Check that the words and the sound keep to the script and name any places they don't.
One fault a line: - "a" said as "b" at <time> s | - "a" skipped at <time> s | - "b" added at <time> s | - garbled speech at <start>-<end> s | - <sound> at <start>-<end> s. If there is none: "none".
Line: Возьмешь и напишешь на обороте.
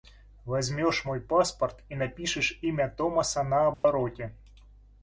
- "мой паспорт" added at 1.1 s
- "имя Томаса" added at 2.6 s
- dropout at 3.7-3.8 s